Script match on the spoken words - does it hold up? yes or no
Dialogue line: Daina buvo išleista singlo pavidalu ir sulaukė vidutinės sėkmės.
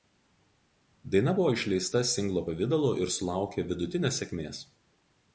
yes